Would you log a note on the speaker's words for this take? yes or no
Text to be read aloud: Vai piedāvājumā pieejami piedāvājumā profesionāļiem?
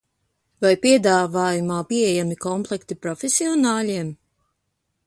yes